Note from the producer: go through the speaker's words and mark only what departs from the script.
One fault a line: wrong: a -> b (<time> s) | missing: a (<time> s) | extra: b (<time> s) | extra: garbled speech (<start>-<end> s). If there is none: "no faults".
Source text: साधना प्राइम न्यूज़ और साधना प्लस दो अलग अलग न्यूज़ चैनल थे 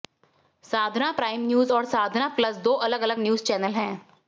wrong: थे -> हैं (3.7 s)